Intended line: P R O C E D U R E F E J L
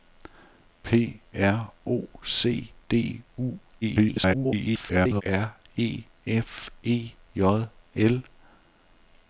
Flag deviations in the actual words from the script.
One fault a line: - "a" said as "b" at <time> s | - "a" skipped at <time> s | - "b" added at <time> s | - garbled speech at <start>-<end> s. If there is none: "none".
- "E" skipped at 2.7 s
- garbled speech at 3.8-5.2 s